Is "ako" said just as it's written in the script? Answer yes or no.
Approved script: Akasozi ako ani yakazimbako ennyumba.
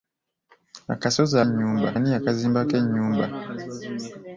no